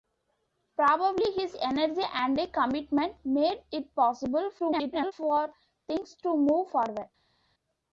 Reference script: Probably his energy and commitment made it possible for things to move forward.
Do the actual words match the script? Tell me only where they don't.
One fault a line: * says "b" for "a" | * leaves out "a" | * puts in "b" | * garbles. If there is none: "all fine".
* garbles